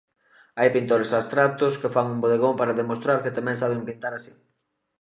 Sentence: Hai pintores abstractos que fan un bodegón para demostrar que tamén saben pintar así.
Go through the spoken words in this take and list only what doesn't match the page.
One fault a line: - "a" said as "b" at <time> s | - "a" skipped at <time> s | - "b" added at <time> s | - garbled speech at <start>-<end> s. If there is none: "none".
none